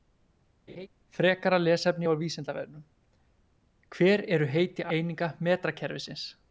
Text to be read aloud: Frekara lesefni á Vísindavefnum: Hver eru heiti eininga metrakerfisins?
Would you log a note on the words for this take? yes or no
no